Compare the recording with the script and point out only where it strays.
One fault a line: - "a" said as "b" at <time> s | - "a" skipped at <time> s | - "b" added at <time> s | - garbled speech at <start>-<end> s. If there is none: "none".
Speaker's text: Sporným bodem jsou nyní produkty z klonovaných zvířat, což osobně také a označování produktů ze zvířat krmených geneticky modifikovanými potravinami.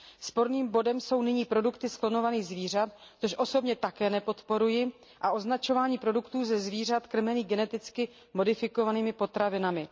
- "nepodporuji" added at 4.1 s